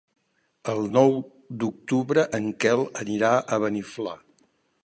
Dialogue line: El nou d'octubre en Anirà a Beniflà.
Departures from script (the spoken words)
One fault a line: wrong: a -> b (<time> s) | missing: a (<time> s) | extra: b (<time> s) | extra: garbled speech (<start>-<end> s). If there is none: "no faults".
extra: Quel (2.7 s)